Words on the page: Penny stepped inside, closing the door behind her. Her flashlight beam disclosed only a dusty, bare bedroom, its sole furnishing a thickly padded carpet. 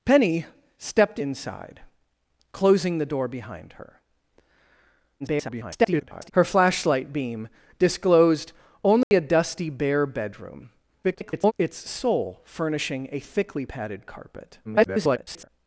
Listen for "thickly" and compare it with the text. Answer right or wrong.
right